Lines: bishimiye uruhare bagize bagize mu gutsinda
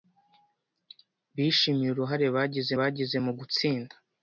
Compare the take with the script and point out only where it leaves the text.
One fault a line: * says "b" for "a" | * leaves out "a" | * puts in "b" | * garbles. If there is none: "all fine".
all fine